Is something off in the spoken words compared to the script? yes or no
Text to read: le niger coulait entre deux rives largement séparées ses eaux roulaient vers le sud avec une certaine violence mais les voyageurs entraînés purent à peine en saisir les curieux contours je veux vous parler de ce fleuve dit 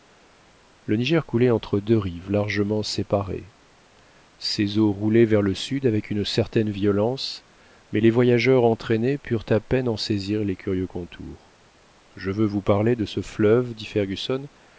no